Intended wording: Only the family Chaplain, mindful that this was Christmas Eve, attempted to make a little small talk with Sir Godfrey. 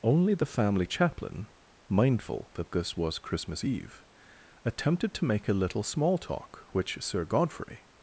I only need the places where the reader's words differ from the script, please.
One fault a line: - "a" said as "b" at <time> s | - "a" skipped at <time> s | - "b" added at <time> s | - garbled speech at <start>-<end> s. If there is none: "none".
- "with" said as "which" at 6.7 s